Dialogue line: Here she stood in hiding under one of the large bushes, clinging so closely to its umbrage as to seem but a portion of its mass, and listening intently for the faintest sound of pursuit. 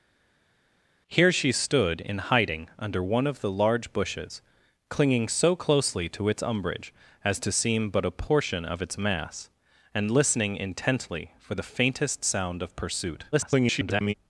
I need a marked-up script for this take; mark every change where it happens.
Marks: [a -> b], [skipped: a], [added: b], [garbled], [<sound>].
Here she stood in hiding under one of the large bushes, clinging so closely to its umbrage as to seem but a portion of its mass, and listening intently for the faintest sound of pursuit. [garbled]